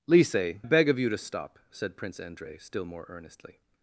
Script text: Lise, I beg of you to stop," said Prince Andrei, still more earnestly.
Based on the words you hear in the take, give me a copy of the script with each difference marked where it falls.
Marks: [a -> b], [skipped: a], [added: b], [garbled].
Lise, [skipped: I] beg of you to stop," said Prince Andrei, still more earnestly.